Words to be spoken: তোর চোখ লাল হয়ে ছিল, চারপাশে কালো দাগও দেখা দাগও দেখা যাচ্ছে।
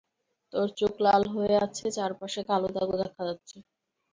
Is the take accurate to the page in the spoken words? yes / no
no